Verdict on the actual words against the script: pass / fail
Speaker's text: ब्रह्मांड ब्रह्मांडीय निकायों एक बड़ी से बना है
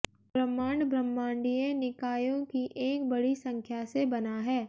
fail